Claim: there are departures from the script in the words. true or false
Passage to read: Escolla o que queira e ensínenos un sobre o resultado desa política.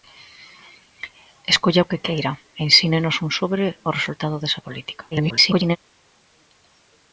true